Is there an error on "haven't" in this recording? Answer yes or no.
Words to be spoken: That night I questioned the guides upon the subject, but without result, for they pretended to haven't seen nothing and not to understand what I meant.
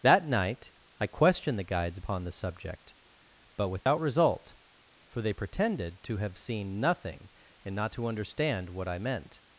yes